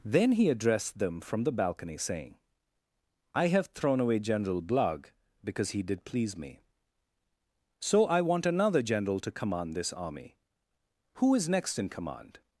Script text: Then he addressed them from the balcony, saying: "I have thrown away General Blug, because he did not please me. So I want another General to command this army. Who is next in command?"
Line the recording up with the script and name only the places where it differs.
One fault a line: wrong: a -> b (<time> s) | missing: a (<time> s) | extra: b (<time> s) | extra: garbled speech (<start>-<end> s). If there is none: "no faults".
missing: not (6.0 s)